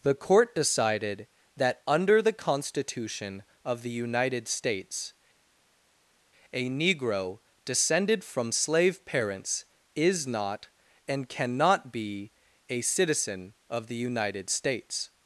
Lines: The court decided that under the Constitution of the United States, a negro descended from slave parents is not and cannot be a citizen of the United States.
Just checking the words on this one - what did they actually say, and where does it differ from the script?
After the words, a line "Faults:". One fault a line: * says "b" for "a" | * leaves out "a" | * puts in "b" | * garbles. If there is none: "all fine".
The court decided that under the Constitution of the United States, a negro descended from slave parents is not and cannot be a citizen of the United States.
Faults:
all fine